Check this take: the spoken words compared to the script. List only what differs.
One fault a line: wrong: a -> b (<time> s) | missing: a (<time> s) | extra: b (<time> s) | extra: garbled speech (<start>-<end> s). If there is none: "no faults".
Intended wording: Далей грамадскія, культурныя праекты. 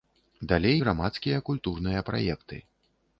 no faults